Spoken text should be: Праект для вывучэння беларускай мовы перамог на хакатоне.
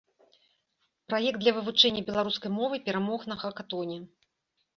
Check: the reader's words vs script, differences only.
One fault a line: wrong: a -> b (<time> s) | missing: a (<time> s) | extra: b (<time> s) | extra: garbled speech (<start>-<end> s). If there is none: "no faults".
no faults